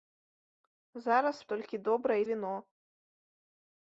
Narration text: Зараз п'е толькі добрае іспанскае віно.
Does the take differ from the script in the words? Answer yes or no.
yes